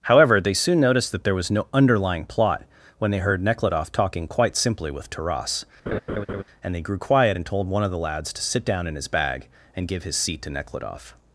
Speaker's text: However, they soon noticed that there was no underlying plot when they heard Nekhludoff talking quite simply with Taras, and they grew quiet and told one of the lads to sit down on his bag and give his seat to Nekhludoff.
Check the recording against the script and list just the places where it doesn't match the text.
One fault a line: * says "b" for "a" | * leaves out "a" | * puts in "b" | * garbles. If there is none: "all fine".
* says "in" for "on"